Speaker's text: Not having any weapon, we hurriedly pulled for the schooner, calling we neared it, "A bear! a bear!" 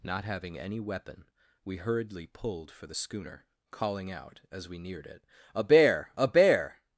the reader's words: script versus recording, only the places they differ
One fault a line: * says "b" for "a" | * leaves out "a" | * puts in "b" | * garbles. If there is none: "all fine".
* puts in "out as"